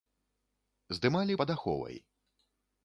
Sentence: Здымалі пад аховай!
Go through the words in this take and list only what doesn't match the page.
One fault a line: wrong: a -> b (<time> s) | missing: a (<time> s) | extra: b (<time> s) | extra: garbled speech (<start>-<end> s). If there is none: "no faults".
no faults